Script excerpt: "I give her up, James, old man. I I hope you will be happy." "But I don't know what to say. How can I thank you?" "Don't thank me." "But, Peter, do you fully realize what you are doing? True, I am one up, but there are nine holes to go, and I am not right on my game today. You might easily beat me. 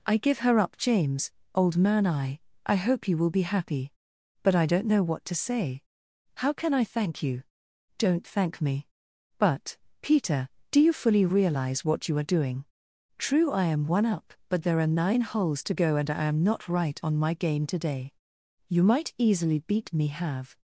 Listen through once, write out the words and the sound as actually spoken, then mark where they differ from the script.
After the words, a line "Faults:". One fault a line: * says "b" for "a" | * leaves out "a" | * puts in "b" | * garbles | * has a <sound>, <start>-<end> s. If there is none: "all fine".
"I give her up, James, old man. I I hope you will be happy." "But I don't know what to say. How can I thank you?" "Don't thank me." "But, Peter, do you fully realize what you are doing? True, I am one up, but there are nine holes to go, and I am not right on my game today. You might easily beat me. Have
Faults:
* puts in "Have"